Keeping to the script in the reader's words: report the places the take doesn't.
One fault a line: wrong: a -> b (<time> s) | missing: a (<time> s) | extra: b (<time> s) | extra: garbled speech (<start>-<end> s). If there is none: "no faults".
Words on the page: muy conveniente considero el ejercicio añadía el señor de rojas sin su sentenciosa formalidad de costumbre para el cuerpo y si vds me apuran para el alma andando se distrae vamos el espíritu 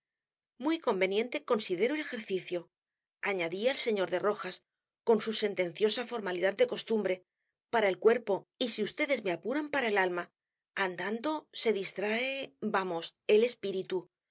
wrong: sin -> con (5.0 s)